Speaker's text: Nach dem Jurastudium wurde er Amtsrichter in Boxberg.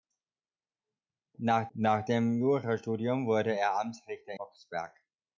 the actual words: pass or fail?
fail